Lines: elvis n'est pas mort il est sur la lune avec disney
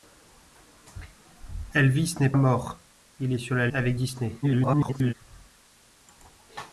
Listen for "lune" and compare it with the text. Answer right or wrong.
wrong